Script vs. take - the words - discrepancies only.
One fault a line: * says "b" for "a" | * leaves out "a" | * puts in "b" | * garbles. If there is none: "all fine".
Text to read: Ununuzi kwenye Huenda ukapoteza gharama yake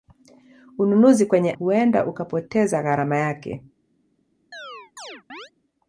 all fine